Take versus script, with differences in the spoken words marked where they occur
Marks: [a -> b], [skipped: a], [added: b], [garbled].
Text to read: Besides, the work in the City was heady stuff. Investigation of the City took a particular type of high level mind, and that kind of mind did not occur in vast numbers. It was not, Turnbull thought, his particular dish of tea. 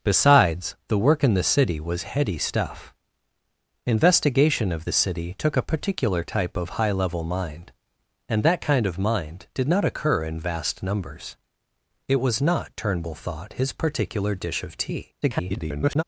Besides, the work in the City was heady stuff. Investigation of the City took a particular type of high level mind, and that kind of mind did not occur in vast numbers. It was not, Turnbull thought, his particular dish of tea. [garbled]